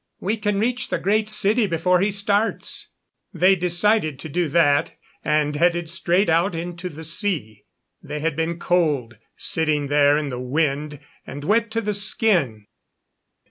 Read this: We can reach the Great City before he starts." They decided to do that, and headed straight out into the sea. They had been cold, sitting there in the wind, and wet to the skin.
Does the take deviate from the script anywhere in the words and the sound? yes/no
no